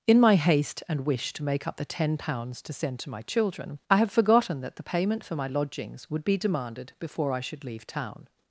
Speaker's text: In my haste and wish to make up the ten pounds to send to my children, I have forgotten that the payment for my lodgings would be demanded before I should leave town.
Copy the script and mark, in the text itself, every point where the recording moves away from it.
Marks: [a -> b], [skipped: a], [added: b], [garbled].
In my haste and wish to make up the ten pounds to send to my children, I have forgotten that the payment for my lodgings would be demanded before I should leave town.